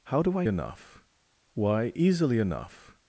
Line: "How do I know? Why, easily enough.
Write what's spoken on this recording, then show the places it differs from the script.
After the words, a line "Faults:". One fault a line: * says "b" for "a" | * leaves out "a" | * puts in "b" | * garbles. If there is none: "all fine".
"How do I enough? Why, easily enough.
Faults:
* says "enough" for "know"